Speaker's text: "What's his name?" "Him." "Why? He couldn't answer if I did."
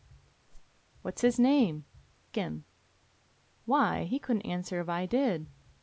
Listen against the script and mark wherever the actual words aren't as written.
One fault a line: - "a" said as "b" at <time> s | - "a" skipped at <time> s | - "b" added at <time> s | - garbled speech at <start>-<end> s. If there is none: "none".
none